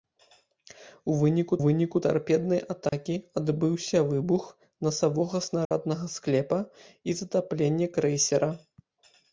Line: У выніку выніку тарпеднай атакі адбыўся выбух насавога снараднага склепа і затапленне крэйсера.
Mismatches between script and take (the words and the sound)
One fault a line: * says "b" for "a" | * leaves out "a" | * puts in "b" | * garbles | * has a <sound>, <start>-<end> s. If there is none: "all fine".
* has a dropout, 2.9-2.9 s
* has a dropout, 5.6-5.7 s